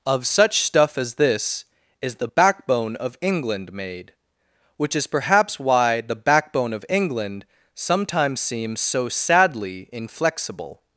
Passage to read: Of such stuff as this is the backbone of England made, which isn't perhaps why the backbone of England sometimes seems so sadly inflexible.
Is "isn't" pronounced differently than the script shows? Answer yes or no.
yes